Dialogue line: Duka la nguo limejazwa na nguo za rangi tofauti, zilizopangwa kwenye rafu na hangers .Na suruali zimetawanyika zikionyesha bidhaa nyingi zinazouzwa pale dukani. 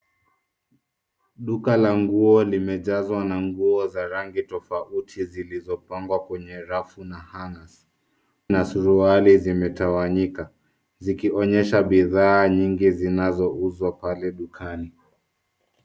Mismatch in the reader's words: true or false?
false